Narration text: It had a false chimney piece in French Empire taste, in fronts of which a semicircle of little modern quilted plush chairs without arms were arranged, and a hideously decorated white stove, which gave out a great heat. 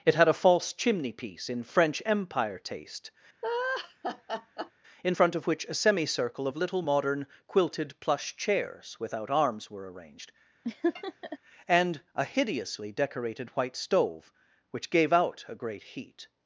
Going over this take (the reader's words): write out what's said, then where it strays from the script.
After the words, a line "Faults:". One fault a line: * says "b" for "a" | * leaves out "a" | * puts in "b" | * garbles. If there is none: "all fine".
It had a false chimney piece in French Empire taste, in front of which a semicircle of little modern quilted plush chairs without arms were arranged, and a hideously decorated white stove, which gave out a great heat.
Faults:
* says "front" for "fronts"